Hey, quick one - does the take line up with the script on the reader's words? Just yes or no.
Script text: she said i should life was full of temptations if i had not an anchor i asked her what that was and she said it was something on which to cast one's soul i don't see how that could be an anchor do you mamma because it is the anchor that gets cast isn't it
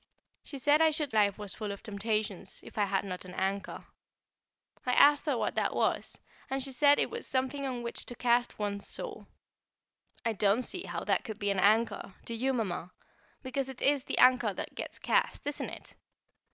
yes